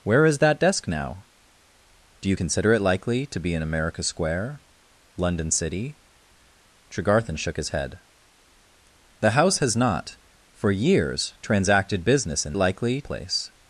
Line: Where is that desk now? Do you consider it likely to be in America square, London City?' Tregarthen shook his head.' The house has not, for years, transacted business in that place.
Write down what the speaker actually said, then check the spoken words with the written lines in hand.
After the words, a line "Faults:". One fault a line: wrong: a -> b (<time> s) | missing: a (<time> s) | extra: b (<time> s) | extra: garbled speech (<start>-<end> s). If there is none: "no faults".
Where is that desk now? Do you consider it likely to be in America square, London City?' Tregarthen shook his head.' The house has not, for years, transacted business in likely place.
Faults:
wrong: that -> likely (12.6 s)